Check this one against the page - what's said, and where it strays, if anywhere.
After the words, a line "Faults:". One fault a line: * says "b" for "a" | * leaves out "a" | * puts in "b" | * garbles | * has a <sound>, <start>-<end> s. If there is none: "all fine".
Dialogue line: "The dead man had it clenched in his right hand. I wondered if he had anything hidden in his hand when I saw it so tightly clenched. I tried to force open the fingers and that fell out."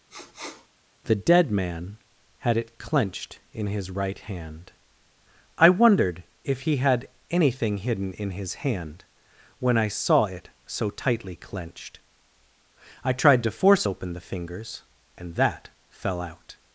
"The dead man had it clenched in his right hand. I wondered if he had anything hidden in his hand when I saw it so tightly clenched. I tried to force open the fingers and that fell out."
Faults:
* has a sniff, 0.1-0.7 s